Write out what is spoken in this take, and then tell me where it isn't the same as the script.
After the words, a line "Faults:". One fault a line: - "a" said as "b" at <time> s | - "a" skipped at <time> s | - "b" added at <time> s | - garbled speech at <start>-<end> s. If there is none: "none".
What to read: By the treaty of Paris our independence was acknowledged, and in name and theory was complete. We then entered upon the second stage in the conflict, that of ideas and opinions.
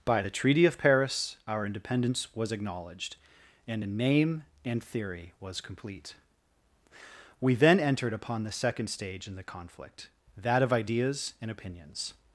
By the treaty of Paris our independence was acknowledged, and in name and theory was complete. We then entered upon the second stage in the conflict, that of ideas and opinions.
Faults:
none